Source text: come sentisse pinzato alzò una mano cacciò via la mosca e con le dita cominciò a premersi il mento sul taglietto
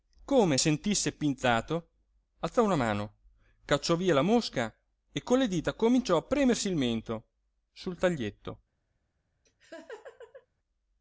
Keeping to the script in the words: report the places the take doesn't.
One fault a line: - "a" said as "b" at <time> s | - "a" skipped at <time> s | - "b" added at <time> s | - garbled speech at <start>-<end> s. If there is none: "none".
none